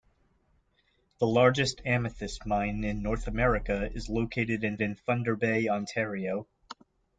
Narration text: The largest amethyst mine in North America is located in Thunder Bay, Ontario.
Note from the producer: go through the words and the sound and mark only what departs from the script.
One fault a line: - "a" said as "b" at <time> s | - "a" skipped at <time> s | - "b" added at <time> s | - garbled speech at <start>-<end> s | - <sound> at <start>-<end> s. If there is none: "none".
- "in" added at 4.8 s